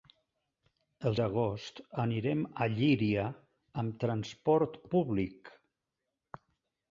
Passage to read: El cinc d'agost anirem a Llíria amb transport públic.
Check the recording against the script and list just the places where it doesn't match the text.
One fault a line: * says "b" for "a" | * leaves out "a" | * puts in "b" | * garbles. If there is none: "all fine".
* leaves out "cinc"